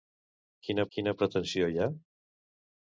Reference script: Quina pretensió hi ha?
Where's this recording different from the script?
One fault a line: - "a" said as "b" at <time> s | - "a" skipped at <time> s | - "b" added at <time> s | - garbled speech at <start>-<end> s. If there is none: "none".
- "quina" added at 1.0 s